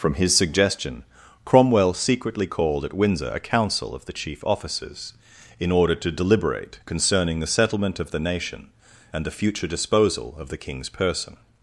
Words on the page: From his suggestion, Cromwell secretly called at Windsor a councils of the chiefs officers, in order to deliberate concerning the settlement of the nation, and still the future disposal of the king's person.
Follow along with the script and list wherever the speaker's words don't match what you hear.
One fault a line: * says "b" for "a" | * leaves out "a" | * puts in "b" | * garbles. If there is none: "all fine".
* says "council" for "councils"
* says "chief" for "chiefs"
* leaves out "still"